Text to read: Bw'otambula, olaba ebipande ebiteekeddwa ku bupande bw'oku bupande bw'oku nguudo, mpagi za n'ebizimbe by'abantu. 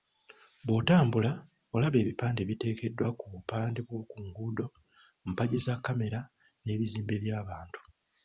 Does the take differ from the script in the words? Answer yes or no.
yes